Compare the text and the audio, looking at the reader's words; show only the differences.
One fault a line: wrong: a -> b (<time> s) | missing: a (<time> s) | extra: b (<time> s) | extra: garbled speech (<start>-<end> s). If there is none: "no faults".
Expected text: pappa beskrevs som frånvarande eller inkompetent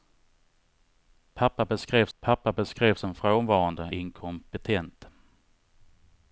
extra: pappa beskrevs (2.2 s)
missing: eller (3.9 s)